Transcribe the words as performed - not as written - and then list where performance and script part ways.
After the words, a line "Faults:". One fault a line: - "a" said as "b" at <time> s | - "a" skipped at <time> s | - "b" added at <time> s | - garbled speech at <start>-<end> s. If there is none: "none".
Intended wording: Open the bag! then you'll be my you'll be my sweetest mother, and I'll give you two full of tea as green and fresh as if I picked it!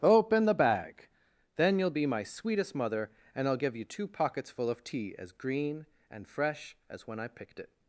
Open the bag! then you'll be my sweetest mother, and I'll give you two pockets full of tea as green and fresh as when I picked it!
Faults:
- "you'll be my" skipped at 2.2 s
- "pockets" added at 4.1 s
- "if" said as "when" at 7.1 s